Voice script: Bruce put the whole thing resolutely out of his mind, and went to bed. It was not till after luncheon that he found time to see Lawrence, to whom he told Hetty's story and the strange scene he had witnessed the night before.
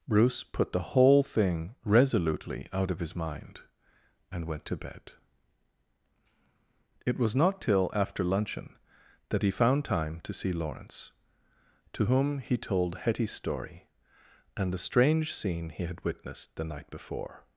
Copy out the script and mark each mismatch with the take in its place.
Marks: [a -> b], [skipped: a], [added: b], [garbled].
Bruce put the whole thing resolutely out of his mind, and went to bed. It was not till after luncheon that he found time to see Lawrence, to whom he told Hetty's story and the strange scene he had witnessed the night before.